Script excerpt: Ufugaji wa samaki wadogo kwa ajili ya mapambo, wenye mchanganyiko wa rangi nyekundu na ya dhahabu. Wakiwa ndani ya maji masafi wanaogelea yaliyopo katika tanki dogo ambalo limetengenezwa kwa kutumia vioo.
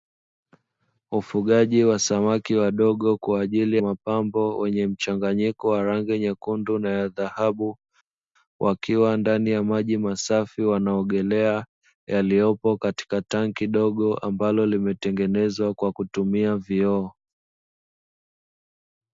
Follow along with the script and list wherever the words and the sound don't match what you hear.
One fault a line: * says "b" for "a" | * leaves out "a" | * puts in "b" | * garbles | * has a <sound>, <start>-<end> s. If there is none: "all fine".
* leaves out "ya"